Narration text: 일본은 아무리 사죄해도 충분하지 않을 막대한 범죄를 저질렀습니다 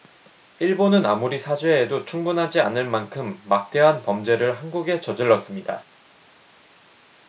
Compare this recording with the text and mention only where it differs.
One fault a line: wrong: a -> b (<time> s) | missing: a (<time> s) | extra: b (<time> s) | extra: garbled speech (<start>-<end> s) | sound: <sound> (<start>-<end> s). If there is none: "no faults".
extra: 만큼 (2.8 s)
extra: 한국에 (4.6 s)